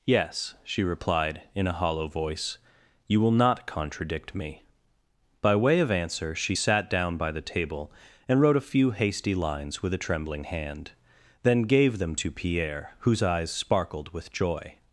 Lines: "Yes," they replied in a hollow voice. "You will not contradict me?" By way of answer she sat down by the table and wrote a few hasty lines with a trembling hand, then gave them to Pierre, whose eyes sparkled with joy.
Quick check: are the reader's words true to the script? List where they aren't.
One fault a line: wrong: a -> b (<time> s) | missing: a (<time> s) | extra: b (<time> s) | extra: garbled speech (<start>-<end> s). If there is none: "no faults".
wrong: they -> she (0.6 s)